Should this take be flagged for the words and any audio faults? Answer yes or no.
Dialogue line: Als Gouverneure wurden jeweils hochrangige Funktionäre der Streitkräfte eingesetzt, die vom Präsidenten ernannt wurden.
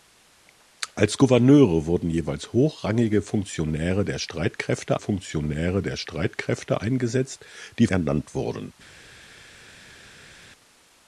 yes